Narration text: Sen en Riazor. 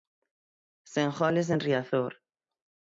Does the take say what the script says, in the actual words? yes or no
no